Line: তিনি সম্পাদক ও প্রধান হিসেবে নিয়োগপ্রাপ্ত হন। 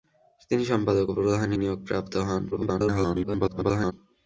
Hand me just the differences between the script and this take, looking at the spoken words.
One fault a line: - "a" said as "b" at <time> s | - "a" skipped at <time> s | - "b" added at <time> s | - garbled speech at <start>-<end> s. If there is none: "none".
- "হিসেবে" skipped at 1.5 s
- garbled speech at 2.5-3.9 s